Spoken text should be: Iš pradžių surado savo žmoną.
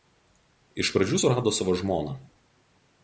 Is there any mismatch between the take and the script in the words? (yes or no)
no